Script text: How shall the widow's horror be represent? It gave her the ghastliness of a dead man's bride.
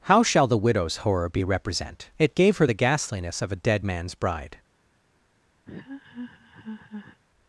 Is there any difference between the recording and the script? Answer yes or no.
no